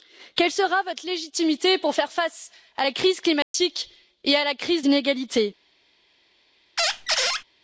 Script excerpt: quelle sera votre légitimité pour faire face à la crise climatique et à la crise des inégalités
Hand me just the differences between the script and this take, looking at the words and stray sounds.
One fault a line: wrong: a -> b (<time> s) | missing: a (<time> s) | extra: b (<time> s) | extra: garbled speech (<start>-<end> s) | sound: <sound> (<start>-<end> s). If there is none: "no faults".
sound: dropout (3.4-3.5 s)
missing: des (4.8 s)
sound: squeak (6.8-7.4 s)